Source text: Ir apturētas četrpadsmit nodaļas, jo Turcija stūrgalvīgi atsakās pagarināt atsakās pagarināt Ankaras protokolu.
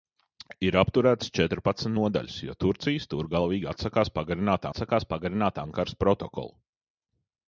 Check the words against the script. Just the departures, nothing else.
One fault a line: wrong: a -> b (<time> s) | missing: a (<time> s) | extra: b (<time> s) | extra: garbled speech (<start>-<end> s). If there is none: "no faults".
no faults